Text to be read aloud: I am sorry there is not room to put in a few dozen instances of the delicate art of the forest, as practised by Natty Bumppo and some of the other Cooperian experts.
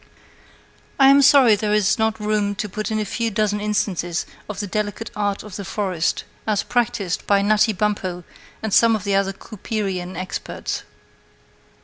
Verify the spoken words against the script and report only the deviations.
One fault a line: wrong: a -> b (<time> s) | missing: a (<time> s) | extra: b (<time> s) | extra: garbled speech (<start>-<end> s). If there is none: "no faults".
no faults